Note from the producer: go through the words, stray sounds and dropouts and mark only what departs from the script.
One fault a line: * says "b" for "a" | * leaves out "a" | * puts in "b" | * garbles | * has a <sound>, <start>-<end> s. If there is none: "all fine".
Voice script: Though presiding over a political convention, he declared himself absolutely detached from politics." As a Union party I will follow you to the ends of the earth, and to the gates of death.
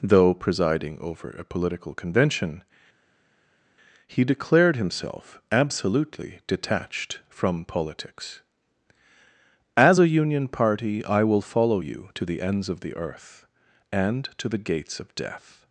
all fine